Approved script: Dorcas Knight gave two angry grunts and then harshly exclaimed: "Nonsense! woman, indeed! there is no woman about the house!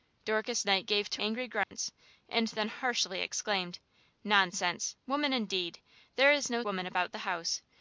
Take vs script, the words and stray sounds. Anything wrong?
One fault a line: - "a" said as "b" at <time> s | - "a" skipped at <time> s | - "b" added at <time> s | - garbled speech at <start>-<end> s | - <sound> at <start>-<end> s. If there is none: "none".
- dropout at 1.6-1.7 s